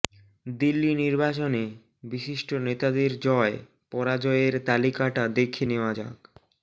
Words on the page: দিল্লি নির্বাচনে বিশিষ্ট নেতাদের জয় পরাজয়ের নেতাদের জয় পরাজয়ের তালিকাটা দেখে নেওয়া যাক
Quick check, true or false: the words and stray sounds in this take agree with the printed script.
false